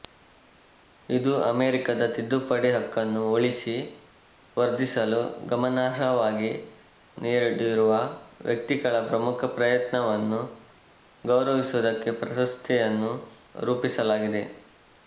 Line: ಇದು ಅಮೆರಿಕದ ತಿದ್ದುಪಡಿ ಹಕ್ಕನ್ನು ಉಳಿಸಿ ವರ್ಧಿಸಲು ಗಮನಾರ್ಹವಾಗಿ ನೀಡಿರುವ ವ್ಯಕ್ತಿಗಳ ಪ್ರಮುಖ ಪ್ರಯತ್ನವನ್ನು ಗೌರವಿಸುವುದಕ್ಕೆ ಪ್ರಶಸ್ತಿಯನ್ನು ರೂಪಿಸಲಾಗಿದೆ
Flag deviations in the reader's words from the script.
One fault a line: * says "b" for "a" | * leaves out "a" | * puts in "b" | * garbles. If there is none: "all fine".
all fine